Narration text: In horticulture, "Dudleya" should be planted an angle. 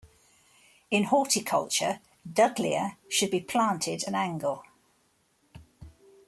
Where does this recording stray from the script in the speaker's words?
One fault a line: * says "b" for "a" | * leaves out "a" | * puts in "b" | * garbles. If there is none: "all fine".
all fine